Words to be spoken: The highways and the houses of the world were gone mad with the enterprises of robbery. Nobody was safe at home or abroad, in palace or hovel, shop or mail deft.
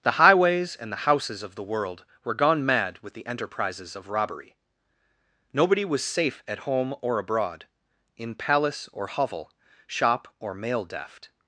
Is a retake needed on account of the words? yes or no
no